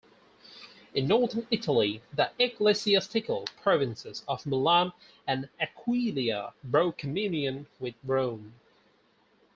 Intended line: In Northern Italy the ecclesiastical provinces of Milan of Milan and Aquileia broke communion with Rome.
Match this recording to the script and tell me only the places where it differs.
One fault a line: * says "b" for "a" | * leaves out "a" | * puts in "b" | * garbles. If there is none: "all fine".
* leaves out "of Milan"